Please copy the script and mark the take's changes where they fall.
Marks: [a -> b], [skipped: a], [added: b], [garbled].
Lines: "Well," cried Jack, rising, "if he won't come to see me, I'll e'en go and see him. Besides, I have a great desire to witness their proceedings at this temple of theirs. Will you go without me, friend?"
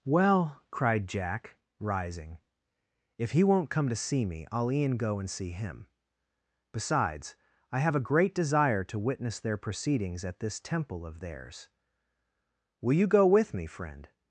"Well," cried Jack, rising, "if he won't come to see me, I'll e'en go and see him. Besides, I have a great desire to witness their proceedings at this temple of theirs. Will you go [without -> with] me, friend?"